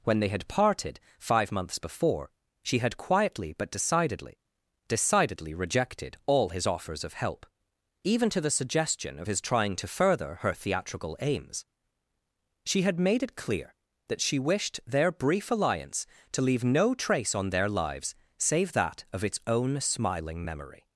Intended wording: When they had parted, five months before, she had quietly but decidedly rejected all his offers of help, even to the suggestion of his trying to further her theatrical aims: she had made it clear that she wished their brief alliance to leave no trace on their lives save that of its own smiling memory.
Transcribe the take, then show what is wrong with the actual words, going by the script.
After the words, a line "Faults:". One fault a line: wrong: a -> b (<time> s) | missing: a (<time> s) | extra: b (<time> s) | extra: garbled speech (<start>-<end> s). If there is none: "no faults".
When they had parted, five months before, she had quietly but decidedly decidedly rejected all his offers of help, even to the suggestion of his trying to further her theatrical aims: she had made it clear that she wished their brief alliance to leave no trace on their lives save that of its own smiling memory.
Faults:
extra: decidedly (4.9 s)